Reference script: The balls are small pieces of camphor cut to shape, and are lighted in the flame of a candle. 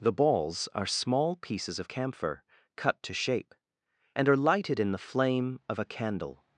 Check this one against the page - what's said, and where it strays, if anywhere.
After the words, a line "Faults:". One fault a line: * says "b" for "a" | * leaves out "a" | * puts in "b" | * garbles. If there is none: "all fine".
The balls are small pieces of camphor cut to shape, and are lighted in the flame of a candle.
Faults:
all fine